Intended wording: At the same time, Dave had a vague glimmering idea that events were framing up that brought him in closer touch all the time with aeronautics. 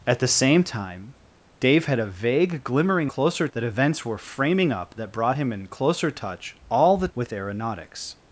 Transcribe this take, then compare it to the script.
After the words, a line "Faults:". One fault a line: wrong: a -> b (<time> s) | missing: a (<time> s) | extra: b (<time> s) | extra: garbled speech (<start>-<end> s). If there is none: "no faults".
At the same time, Dave had a vague glimmering closer that events were framing up that brought him in closer touch all the with aeronautics.
Faults:
wrong: idea -> closer (3.1 s)
missing: time (7.1 s)